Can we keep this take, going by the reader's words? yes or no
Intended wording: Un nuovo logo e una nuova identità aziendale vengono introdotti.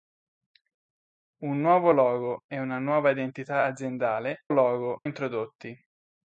no